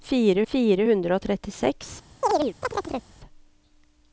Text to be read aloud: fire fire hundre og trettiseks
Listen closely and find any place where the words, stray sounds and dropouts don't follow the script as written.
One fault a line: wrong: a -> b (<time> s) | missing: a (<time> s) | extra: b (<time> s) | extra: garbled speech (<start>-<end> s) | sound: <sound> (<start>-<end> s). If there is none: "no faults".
sound: chirp (2.2-3.1 s)